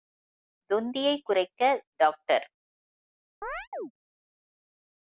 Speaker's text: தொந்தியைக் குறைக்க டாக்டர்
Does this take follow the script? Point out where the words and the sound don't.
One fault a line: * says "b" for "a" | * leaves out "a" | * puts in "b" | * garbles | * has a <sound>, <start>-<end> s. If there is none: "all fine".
* has a chirp, 3.4-3.9 s